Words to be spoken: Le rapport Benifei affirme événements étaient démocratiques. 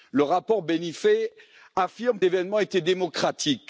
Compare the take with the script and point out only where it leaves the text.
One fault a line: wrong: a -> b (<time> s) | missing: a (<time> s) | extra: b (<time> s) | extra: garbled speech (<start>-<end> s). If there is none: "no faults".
no faults